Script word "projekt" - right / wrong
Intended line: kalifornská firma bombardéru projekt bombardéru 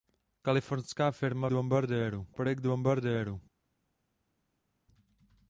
right